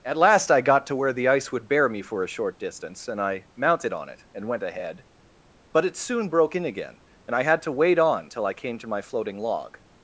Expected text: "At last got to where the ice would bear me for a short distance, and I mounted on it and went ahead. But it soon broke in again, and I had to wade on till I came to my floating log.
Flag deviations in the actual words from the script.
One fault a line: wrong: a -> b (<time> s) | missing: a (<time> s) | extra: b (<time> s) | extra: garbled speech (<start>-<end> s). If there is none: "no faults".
extra: I (0.5 s)